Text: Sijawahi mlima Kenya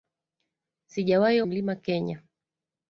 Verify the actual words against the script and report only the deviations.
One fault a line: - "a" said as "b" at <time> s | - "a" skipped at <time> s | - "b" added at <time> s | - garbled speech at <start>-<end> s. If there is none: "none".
none